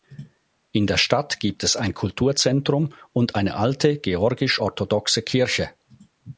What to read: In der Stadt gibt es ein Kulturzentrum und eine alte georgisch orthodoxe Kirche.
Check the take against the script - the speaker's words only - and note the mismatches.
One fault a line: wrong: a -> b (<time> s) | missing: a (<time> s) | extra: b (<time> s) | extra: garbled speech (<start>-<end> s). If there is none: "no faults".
no faults